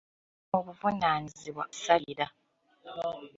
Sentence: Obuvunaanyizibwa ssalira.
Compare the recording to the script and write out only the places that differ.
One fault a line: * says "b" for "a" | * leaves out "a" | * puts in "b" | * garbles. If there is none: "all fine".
all fine